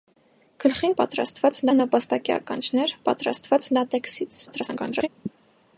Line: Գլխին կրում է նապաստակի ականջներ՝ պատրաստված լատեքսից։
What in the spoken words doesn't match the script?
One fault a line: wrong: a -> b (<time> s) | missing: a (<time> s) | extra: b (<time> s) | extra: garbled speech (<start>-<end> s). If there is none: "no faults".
wrong: կրում -> պատրաստված (1.0 s)
extra: garbled speech (4.5-5.1 s)